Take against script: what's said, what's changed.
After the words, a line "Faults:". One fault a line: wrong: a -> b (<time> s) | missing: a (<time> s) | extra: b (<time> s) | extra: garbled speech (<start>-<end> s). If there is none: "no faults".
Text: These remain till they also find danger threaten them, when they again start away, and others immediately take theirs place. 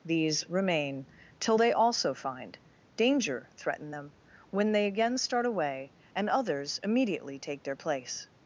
These remain till they also find danger threaten them, when they again start away, and others immediately take their place.
Faults:
wrong: theirs -> their (7.6 s)